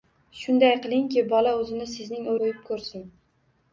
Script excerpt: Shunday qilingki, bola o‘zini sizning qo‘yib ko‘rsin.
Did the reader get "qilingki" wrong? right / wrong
right